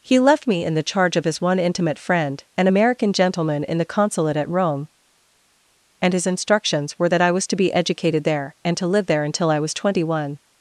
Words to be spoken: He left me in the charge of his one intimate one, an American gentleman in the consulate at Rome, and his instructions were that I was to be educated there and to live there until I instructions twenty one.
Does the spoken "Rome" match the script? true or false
true